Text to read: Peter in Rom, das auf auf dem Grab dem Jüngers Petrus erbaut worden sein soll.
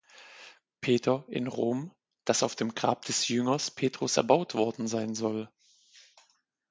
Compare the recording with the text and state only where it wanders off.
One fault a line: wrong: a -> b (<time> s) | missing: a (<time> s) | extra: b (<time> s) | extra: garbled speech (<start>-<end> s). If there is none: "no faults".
missing: auf (2.5 s)
wrong: dem -> des (3.0 s)